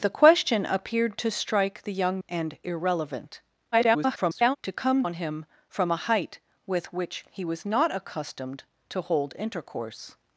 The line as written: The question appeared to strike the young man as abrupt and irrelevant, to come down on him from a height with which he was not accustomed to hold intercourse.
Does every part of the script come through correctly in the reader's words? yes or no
no